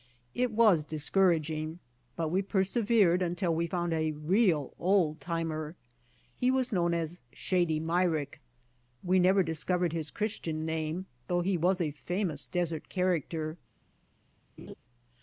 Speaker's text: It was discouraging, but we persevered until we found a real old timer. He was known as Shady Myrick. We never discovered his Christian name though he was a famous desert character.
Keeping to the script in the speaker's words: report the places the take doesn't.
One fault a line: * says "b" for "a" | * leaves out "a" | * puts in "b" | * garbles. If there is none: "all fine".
all fine